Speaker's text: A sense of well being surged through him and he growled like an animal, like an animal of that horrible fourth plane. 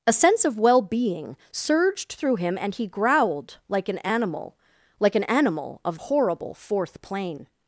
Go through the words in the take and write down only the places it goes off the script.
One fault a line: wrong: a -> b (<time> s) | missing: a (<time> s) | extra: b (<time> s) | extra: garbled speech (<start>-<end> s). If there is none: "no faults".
missing: that (6.0 s)